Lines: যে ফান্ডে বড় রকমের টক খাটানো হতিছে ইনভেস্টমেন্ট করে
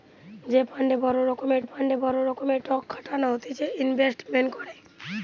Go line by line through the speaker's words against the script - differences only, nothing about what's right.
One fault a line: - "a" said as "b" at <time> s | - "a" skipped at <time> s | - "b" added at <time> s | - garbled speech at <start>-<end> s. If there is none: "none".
- "ফান্ডে বড় রকমের" added at 1.6 s